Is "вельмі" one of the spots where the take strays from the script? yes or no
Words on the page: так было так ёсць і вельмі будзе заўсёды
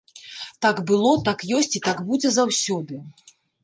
yes